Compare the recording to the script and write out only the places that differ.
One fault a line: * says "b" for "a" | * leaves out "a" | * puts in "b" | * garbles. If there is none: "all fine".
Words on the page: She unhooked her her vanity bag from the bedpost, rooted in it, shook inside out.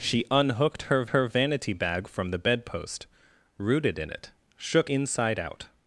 all fine